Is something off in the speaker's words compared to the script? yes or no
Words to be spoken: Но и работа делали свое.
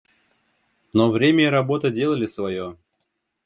yes